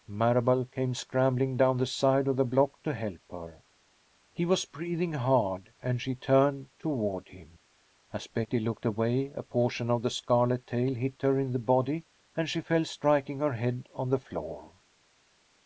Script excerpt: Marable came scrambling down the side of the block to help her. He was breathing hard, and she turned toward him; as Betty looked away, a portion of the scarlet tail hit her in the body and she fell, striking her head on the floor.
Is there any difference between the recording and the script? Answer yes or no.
no